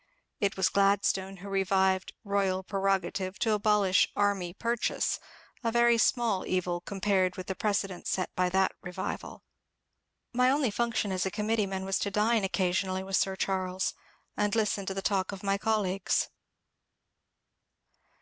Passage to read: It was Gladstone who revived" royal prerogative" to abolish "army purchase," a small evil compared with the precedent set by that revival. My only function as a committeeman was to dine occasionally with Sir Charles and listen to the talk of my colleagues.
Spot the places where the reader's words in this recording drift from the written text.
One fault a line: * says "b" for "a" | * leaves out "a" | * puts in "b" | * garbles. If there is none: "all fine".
* puts in "very"